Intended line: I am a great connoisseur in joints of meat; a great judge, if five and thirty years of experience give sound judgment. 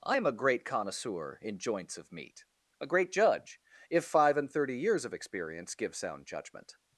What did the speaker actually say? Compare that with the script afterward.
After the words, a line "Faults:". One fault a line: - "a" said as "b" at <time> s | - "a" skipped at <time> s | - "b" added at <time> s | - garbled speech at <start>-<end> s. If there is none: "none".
I am a great connoisseur in joints of meat; a great judge, if five and thirty years of experience give sound judgment.
Faults:
none